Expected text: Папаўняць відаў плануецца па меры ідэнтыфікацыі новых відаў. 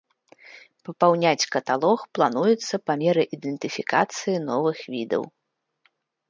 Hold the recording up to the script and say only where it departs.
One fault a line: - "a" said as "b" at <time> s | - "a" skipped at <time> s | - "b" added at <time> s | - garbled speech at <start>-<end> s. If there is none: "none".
- "відаў" said as "каталог" at 1.6 s